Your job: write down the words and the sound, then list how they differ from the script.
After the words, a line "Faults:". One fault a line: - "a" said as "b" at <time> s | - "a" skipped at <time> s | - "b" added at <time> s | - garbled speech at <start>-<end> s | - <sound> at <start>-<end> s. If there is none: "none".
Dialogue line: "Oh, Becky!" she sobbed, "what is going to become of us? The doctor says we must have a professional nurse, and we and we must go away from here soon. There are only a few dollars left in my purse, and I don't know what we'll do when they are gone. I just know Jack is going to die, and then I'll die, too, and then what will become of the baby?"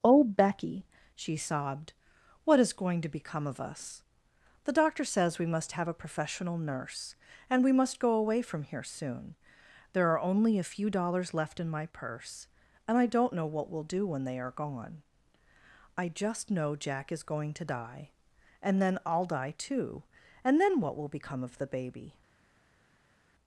"Oh, Becky!" she sobbed, "what is going to become of us? The doctor says we must have a professional nurse, and we must go away from here soon. There are only a few dollars left in my purse, and I don't know what we'll do when they are gone. I just know Jack is going to die, and then I'll die, too, and then what will become of the baby?"
Faults:
- "and we" skipped at 7.7 s